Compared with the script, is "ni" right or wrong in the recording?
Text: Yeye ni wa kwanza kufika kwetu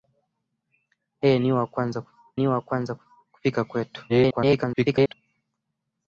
right